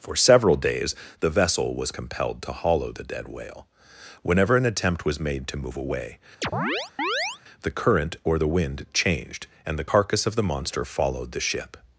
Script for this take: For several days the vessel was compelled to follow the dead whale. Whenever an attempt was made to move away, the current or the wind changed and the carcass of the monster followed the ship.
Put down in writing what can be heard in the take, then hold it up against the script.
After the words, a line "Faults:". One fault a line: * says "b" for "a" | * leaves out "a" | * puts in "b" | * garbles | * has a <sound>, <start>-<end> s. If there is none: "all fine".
For several days the vessel was compelled to hollow the dead whale. Whenever an attempt was made to move away, the current or the wind changed and the carcass of the monster followed the ship.
Faults:
* says "hollow" for "follow"
* has a chirp, 6.4-7.4 s